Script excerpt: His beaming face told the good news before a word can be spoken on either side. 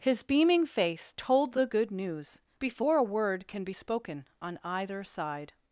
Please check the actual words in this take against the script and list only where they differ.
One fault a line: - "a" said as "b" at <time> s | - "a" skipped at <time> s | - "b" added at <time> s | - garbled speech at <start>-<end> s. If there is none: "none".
none